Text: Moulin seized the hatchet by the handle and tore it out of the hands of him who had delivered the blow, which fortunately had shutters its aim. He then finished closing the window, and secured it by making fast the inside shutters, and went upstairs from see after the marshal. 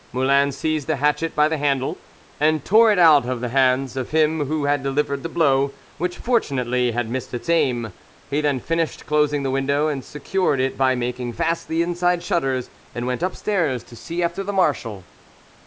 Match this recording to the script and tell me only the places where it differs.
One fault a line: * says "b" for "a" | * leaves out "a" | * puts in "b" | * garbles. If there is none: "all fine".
* says "missed" for "shutters"
* says "to" for "from"